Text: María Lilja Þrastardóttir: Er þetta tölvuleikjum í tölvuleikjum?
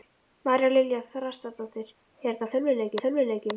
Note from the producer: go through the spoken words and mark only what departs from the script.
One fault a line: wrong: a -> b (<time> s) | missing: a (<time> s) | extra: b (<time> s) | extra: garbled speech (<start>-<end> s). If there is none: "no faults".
no faults